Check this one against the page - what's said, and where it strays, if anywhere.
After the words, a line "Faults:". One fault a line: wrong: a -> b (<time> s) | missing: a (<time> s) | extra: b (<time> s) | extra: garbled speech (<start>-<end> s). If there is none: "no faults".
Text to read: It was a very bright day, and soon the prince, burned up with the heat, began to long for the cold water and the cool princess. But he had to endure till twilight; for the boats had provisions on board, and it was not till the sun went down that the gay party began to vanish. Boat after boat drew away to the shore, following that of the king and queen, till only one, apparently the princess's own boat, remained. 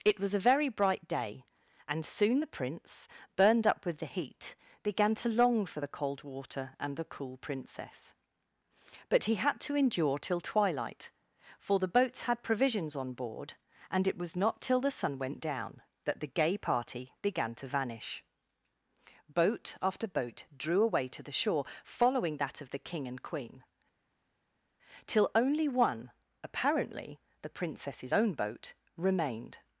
It was a very bright day, and soon the prince, burned up with the heat, began to long for the cold water and the cool princess. But he had to endure till twilight; for the boats had provisions on board, and it was not till the sun went down that the gay party began to vanish. Boat after boat drew away to the shore, following that of the king and queen, till only one, apparently the princess's own boat, remained.
Faults:
no faults